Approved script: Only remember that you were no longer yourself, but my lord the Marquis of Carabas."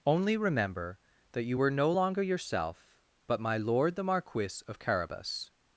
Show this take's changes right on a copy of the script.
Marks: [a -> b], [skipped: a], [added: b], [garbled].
Only remember that you were no longer yourself, but my lord the Marquis of Carabas."